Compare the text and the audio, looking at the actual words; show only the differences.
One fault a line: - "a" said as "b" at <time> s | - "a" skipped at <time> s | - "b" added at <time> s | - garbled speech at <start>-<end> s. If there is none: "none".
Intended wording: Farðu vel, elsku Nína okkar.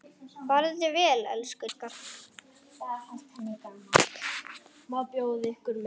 - "Nína" skipped at 1.7 s